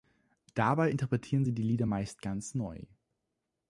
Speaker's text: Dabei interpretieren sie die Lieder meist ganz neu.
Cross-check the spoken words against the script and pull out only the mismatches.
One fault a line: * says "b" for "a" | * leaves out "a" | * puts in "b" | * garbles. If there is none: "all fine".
all fine